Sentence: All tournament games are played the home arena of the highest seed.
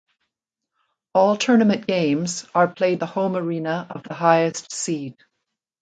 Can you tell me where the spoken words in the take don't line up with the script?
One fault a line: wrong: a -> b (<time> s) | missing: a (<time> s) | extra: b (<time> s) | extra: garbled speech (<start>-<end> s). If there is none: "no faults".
no faults